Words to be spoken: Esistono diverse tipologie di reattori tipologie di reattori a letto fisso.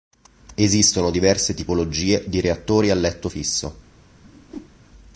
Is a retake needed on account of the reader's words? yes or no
yes